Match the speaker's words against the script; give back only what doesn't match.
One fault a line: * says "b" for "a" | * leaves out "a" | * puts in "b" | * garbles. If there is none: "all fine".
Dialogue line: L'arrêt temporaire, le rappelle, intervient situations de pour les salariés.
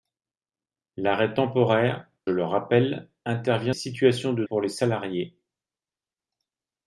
all fine